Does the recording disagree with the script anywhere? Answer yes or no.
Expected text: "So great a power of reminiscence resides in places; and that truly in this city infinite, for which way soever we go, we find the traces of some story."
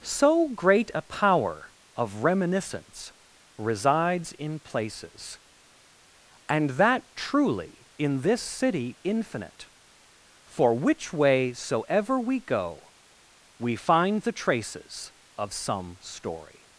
no